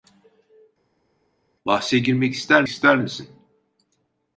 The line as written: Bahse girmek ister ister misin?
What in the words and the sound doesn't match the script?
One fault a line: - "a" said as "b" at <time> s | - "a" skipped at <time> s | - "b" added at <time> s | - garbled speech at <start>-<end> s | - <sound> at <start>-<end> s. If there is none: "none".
none